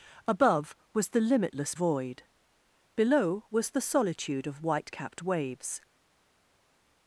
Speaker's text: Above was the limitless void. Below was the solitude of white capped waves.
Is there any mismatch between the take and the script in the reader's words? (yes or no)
no